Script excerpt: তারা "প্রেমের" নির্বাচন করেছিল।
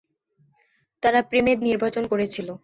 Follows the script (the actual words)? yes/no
yes